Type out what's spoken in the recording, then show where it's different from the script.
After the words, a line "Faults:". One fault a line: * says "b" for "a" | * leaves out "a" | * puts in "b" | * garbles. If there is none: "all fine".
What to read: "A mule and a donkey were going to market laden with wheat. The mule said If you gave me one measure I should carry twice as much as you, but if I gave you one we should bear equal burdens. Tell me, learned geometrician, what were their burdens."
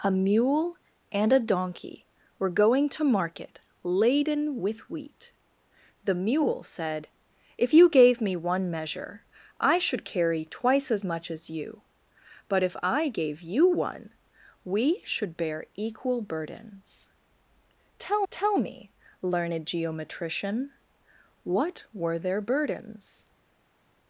"A mule and a donkey were going to market laden with wheat. The mule said If you gave me one measure I should carry twice as much as you, but if I gave you one we should bear equal burdens. Tell tell me, learned geometrician, what were their burdens."
Faults:
* puts in "tell"